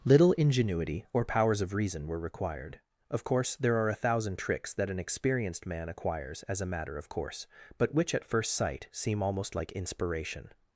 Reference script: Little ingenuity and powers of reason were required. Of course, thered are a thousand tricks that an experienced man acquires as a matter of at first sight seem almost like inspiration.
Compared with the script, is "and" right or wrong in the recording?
wrong